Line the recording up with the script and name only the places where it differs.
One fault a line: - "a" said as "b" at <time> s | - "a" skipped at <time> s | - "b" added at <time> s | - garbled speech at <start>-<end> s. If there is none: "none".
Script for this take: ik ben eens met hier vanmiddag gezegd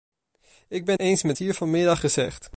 none